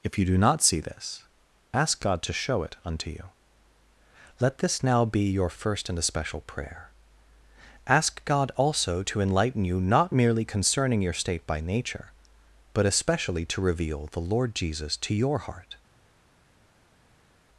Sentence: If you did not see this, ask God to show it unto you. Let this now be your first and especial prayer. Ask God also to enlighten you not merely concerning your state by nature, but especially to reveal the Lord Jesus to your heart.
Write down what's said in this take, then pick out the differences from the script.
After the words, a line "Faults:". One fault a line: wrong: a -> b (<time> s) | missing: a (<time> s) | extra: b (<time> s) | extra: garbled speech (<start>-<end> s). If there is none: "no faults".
If you do not see this, ask God to show it unto you. Let this now be your first and especial prayer. Ask God also to enlighten you not merely concerning your state by nature, but especially to reveal the Lord Jesus to your heart.
Faults:
wrong: did -> do (0.2 s)